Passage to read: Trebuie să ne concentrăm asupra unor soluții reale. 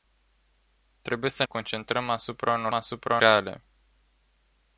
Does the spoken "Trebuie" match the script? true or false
true